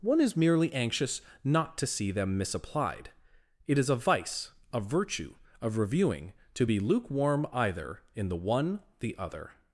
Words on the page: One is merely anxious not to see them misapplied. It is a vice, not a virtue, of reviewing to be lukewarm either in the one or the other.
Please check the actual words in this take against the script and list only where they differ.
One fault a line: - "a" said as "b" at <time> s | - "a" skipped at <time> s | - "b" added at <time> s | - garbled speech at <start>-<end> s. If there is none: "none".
- "not" skipped at 4.5 s
- "or" skipped at 8.8 s